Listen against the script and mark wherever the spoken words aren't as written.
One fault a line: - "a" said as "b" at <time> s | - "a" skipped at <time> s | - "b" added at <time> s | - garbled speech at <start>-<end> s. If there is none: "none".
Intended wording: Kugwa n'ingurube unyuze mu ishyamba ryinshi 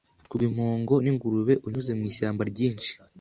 - "impongo" added at 0.5 s